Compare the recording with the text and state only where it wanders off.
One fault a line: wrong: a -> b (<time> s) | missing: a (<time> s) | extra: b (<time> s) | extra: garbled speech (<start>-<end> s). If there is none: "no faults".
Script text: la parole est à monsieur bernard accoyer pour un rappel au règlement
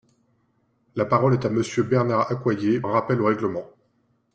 missing: pour (2.8 s)